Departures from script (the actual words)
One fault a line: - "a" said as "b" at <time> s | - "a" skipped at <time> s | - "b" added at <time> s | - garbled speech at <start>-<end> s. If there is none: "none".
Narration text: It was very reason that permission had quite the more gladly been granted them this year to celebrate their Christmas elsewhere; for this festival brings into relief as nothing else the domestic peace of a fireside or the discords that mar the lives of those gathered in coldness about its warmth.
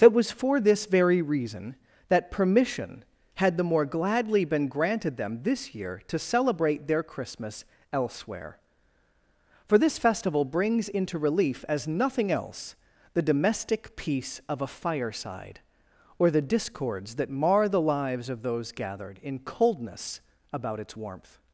- "for this" added at 0.3 s
- "quite" skipped at 3.6 s